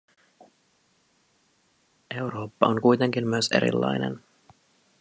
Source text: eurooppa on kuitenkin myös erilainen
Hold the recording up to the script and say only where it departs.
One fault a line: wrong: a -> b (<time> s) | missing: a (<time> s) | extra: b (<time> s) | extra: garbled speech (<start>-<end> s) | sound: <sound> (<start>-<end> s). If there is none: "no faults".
no faults